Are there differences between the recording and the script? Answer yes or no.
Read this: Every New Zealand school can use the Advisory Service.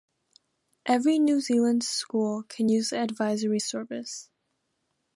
no